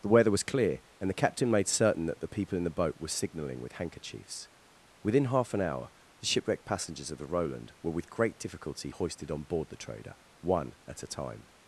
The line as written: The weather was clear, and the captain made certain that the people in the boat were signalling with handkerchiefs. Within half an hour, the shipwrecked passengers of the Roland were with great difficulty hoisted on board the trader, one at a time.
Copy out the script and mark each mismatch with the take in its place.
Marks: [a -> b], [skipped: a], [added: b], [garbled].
The weather was clear, and the captain made certain that the people in the boat were signalling with handkerchiefs. Within half an hour, the shipwrecked passengers of the Roland were with great difficulty hoisted on board the trader, one at a time.